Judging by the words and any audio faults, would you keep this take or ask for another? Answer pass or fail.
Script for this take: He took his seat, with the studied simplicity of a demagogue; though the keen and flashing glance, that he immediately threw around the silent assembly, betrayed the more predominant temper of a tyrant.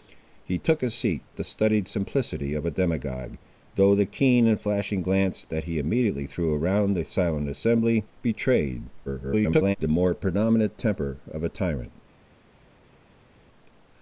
fail